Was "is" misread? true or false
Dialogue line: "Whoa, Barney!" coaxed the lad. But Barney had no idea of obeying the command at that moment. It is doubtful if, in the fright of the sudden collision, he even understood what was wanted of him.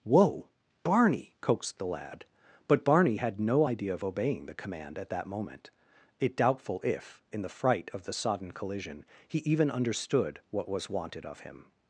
true